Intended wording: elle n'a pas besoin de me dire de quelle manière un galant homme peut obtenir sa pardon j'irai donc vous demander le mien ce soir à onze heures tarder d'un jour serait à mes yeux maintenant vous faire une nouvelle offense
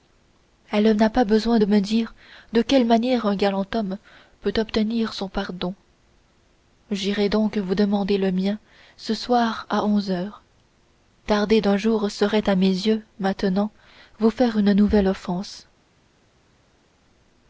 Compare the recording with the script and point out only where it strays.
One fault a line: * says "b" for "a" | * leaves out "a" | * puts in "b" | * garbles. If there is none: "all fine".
* says "son" for "sa"